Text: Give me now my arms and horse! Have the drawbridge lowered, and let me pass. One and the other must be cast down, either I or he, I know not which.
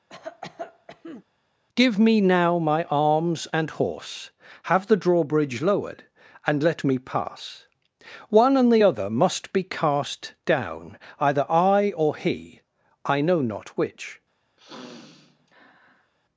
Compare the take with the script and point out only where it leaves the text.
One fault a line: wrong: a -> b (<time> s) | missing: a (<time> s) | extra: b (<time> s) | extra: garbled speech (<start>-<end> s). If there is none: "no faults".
no faults